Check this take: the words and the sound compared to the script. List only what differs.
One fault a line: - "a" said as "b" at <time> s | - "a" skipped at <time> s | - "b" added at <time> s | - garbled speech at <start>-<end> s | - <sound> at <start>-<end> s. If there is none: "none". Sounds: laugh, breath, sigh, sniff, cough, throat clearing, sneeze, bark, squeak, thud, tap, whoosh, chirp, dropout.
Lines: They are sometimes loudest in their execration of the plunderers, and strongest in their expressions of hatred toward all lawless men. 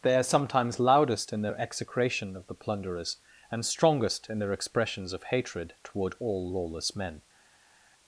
none